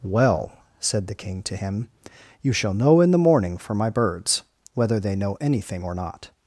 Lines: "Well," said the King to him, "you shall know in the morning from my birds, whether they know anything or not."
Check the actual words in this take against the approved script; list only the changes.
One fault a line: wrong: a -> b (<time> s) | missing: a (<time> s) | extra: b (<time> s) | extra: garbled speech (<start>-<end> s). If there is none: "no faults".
wrong: from -> for (3.6 s)